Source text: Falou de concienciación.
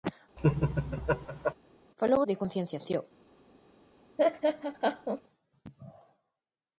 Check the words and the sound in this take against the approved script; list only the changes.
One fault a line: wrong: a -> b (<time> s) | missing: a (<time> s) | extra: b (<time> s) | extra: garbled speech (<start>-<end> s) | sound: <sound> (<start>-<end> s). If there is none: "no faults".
sound: laugh (0.4-1.5 s)
sound: laugh (4.2-5.2 s)